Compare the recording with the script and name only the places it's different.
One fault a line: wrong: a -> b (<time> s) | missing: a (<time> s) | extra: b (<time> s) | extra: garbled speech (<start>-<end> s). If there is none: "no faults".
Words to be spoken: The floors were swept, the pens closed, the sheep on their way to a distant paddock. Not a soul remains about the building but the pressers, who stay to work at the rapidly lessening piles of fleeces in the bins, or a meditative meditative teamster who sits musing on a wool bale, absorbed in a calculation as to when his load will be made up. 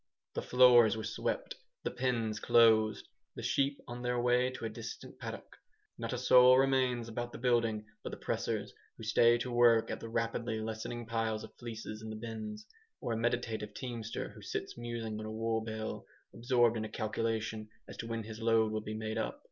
missing: meditative (13.8 s)